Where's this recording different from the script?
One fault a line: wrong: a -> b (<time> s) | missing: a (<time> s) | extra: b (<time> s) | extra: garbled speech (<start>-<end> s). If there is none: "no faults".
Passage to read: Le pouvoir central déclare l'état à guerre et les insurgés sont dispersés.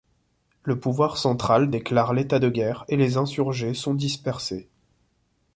wrong: à -> de (2.4 s)